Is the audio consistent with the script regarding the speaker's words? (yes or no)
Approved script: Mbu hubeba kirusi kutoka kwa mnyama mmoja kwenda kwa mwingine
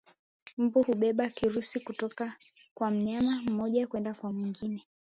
yes